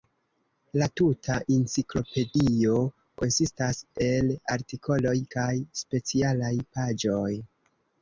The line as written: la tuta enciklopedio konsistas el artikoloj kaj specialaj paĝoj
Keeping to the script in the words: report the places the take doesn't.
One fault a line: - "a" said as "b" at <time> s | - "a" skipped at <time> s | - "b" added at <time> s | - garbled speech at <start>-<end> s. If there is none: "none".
none